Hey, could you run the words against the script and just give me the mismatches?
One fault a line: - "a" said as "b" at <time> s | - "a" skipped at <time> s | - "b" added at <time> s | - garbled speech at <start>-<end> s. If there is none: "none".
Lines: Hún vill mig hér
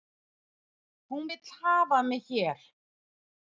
- "hafa" added at 1.6 s